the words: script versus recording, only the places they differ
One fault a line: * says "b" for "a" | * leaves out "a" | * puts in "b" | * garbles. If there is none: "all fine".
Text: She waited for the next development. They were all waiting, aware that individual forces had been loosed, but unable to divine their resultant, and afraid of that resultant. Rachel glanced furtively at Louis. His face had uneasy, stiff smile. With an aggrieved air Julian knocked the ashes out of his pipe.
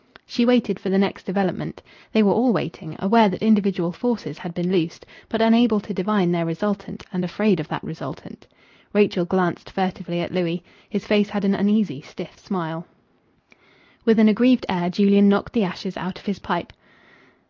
* puts in "an"